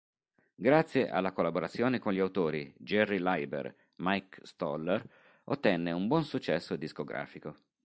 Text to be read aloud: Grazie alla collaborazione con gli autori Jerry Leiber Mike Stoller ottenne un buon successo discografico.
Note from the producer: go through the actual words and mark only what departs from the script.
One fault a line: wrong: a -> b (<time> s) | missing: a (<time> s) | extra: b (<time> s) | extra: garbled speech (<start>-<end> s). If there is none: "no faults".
no faults